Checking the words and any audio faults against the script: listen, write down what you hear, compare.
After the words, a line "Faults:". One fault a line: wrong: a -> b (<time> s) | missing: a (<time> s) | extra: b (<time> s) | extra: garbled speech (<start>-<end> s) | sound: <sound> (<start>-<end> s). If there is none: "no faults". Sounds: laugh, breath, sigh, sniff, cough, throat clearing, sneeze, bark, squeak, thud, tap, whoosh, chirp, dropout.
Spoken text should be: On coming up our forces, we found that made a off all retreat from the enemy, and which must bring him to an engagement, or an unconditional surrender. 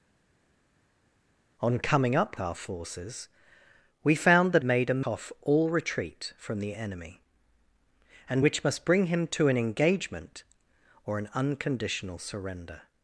On coming up our forces, we found that made a off all retreat from the enemy, and which must bring him to an engagement, or an unconditional surrender.
Faults:
no faults